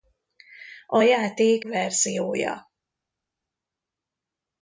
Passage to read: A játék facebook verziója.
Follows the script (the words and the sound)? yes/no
no